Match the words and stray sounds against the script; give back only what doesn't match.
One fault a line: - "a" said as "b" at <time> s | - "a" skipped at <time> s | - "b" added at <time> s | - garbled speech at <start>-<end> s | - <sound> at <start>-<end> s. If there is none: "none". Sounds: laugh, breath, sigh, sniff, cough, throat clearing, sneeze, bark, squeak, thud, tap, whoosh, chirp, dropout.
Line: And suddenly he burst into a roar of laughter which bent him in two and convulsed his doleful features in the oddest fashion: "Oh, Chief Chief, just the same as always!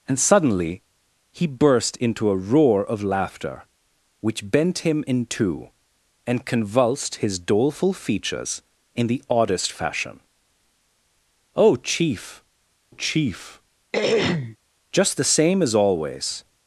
- throat clearing at 13.9-14.6 s